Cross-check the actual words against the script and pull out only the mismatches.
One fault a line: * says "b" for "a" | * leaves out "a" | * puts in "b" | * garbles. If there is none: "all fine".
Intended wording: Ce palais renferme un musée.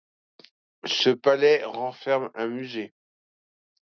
all fine